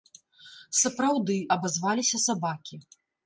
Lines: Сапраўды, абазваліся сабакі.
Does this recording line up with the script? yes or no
yes